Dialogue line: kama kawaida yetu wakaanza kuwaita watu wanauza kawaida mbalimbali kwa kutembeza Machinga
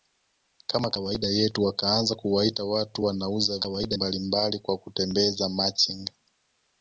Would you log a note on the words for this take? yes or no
no